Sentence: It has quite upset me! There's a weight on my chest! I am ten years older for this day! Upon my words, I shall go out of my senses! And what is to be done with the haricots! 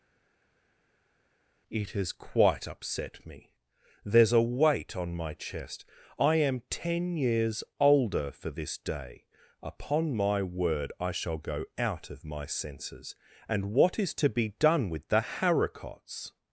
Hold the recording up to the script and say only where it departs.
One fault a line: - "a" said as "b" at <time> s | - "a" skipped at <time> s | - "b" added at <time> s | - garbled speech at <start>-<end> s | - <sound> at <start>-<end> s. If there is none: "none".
- "words" said as "word" at 10.4 s